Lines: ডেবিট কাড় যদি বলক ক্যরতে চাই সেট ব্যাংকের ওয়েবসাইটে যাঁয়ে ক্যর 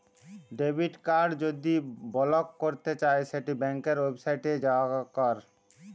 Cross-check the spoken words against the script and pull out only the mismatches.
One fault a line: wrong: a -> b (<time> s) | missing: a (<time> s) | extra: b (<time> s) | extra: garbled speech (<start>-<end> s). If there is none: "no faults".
no faults